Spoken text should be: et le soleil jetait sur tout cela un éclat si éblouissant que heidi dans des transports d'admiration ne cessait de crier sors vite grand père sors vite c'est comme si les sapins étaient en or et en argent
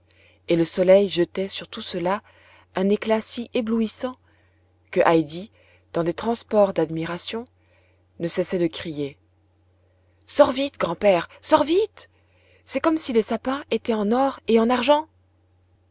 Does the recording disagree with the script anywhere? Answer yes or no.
no